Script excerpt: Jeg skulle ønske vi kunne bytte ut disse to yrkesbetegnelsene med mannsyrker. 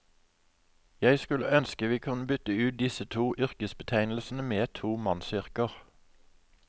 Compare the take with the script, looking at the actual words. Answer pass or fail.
fail